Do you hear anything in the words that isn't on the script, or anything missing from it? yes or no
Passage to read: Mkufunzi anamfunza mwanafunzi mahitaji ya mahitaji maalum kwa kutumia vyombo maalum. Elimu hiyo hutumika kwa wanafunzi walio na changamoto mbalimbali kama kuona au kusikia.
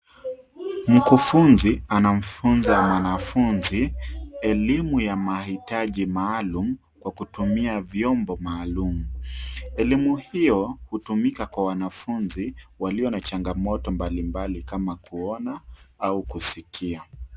yes